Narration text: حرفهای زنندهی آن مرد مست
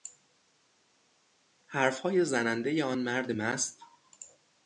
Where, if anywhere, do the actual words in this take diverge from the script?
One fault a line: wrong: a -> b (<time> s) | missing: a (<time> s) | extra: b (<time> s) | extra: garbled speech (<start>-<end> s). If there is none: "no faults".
no faults